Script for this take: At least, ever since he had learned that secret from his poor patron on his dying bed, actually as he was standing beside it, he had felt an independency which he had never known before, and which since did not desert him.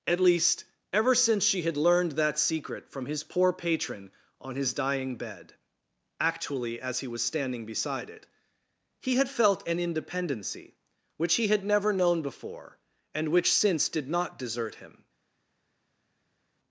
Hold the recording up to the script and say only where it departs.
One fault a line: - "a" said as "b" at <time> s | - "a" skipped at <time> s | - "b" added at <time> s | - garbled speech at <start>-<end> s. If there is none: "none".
- "he" said as "she" at 1.4 s